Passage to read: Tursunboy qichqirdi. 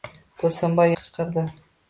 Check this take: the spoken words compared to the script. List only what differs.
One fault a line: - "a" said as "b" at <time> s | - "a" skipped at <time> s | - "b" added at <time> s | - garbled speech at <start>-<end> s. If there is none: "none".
none